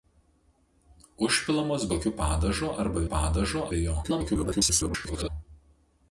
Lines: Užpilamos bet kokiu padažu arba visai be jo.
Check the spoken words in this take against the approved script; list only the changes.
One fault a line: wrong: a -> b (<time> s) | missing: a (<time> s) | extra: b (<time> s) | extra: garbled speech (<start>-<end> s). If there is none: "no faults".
missing: bet (1.9 s)
wrong: visai -> padažu (3.1 s)
extra: garbled speech (4.0-5.3 s)